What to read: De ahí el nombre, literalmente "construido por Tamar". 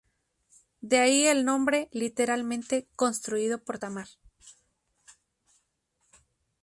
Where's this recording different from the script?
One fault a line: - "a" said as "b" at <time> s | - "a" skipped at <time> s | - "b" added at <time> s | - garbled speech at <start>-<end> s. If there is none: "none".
none